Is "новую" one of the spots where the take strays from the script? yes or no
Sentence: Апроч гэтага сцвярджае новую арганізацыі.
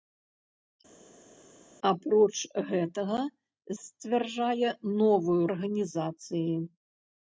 no